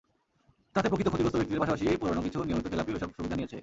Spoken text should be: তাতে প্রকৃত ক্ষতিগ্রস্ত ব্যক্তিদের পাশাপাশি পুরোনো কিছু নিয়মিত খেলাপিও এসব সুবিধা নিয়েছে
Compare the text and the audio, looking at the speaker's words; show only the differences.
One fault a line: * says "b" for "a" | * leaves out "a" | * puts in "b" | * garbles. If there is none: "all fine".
all fine